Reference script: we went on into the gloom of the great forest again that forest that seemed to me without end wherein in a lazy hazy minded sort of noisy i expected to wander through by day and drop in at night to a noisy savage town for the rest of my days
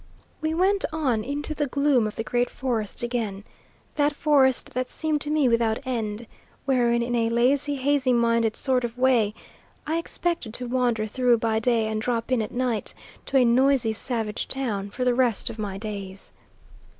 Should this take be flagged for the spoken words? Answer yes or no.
yes